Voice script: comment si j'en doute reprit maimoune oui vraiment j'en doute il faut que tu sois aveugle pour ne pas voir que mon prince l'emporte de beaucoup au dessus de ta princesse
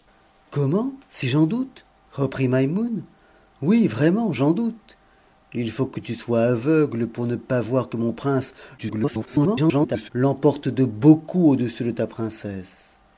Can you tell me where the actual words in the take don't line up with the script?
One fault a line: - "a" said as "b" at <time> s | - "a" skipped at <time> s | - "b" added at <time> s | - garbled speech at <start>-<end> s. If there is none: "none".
- garbled speech at 8.8-10.1 s